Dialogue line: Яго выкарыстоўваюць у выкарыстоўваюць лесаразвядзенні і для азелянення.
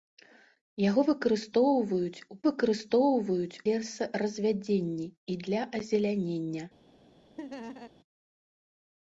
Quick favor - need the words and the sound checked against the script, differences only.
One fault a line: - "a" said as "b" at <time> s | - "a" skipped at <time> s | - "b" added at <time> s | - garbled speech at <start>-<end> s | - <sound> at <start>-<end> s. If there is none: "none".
- laugh at 7.4-7.9 s